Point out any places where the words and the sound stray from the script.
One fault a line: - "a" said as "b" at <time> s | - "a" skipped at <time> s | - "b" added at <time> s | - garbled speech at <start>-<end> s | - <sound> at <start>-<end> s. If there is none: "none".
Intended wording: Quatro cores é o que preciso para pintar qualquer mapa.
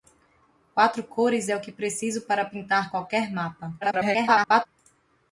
- garbled speech at 3.8-4.7 s